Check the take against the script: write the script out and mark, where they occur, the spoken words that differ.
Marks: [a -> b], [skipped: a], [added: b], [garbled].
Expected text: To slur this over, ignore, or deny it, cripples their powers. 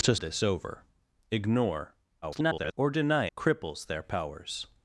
To [skipped: slur] this over, ignore, [garbled] or deny [skipped: it,] cripples their powers.